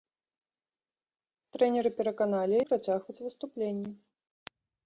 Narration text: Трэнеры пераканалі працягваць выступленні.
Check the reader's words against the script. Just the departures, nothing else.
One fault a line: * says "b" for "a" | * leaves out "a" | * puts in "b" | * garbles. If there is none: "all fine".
all fine